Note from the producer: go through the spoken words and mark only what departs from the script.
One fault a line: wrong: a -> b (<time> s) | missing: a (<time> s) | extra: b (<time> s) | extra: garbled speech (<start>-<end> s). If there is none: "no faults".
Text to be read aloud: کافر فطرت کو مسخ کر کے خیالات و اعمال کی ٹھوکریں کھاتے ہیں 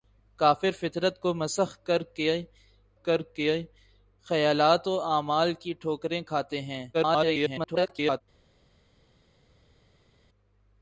extra: کر کے (3.0 s)
extra: garbled speech (6.9-8.2 s)